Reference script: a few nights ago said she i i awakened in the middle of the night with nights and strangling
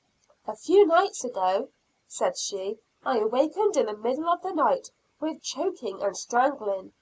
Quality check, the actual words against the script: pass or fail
fail